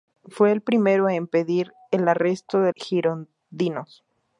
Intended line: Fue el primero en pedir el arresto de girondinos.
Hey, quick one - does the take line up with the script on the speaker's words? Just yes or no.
yes